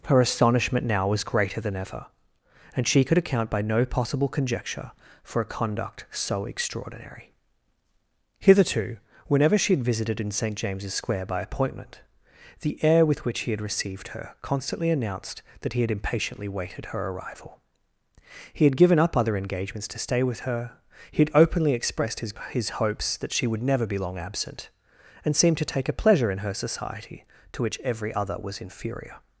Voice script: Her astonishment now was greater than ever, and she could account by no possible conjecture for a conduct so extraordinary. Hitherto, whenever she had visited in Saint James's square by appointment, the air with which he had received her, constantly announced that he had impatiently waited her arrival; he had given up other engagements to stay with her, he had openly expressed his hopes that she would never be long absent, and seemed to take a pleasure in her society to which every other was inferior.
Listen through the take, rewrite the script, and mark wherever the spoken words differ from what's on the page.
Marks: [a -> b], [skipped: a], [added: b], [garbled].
Her astonishment now was greater than ever, and she could account by no possible conjecture for a conduct so extraordinary. Hitherto, whenever she had visited in Saint James's square by appointment, the air with which he had received her, constantly announced that he had impatiently waited her arrival; he had given up other engagements to stay with her, he had openly expressed his [added: his] hopes that she would never be long absent, and seemed to take a pleasure in her society to which every other was inferior.